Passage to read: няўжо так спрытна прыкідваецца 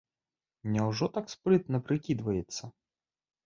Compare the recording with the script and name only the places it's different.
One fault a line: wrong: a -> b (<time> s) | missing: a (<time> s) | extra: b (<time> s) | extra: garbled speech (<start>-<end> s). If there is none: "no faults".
no faults